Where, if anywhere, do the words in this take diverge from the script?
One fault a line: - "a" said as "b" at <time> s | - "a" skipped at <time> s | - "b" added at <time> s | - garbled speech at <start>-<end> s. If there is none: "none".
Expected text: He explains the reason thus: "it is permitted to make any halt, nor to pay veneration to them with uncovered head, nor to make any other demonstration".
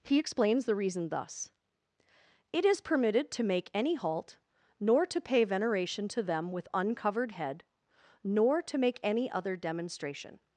none